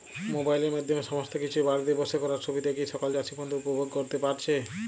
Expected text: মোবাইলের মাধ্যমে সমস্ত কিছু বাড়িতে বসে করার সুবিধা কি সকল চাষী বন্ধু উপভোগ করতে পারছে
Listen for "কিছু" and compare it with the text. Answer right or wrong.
right